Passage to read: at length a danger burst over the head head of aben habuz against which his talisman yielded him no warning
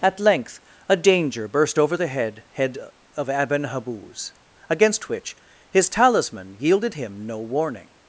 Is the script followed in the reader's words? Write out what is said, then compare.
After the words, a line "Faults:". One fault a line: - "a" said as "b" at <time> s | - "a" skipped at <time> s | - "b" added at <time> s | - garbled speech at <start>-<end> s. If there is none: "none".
at length a danger burst over the head head of aben habuz against which his talisman yielded him no warning
Faults:
none